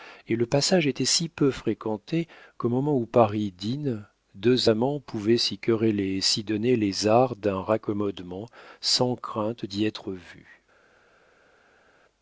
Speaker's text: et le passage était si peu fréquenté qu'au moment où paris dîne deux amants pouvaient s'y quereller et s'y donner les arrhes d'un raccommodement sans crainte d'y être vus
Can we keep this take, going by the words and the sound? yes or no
yes